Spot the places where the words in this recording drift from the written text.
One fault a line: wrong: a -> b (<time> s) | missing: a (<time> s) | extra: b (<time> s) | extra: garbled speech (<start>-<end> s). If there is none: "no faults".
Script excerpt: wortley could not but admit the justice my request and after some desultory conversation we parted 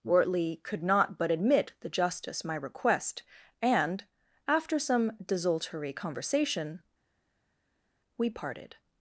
no faults